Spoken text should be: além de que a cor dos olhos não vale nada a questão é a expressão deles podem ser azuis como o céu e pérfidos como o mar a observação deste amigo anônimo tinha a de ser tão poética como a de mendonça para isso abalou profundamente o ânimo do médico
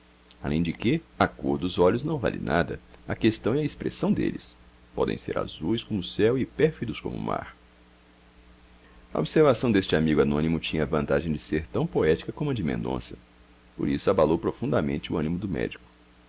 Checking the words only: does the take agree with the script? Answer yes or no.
no